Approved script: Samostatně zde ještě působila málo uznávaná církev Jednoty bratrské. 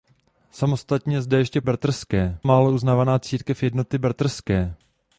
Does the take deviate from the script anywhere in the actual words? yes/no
yes